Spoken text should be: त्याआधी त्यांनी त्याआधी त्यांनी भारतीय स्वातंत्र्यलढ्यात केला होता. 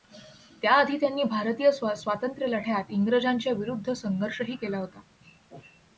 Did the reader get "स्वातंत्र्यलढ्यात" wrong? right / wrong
wrong